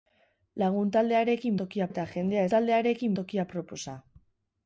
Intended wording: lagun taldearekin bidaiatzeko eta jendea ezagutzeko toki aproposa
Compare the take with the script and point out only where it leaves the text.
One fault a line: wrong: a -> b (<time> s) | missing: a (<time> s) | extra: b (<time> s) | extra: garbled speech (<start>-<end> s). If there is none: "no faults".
wrong: bidaiatzeko -> toki (1.6 s)
wrong: ezagutzeko -> taldearekin (2.5 s)